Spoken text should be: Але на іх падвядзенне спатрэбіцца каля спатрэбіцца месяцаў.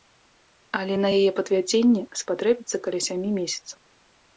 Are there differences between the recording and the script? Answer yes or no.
yes